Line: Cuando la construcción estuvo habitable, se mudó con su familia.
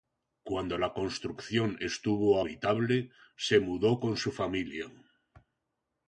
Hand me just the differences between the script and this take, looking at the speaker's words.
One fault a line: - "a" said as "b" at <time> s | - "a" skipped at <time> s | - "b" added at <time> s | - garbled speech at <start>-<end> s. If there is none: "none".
none